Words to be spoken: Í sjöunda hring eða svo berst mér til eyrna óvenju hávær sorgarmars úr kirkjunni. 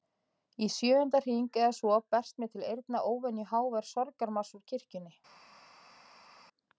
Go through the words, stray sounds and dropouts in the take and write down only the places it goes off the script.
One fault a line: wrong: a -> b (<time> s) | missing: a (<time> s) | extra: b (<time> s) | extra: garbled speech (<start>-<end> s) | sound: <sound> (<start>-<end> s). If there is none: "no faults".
no faults